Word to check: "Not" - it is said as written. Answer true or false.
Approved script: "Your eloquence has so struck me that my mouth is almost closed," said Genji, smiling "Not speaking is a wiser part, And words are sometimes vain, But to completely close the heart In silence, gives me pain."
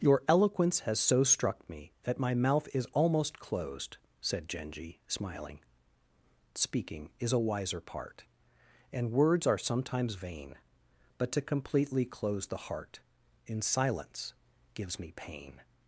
false